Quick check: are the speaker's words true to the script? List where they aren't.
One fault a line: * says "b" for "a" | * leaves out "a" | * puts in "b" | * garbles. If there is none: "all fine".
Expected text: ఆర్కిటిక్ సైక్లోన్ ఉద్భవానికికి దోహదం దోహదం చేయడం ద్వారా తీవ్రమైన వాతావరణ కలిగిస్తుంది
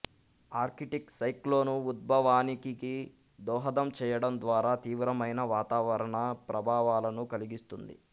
* leaves out "దోహదం"
* puts in "ప్రభావాలను"